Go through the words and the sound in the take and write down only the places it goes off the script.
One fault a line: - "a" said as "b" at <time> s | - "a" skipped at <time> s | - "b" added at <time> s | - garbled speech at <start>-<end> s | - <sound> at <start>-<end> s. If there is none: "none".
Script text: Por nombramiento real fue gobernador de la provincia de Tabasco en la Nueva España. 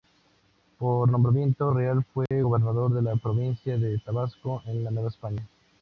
- dropout at 2.3-2.3 s